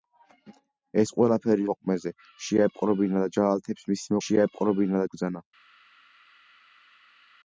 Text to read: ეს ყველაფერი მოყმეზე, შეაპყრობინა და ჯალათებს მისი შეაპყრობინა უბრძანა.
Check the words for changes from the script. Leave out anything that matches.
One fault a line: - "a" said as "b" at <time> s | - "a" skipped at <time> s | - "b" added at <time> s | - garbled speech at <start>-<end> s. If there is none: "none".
none